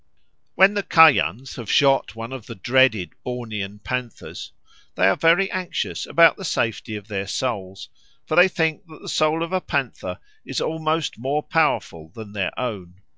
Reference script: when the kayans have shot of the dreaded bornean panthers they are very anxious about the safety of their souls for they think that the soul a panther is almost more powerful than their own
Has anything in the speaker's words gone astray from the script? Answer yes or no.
yes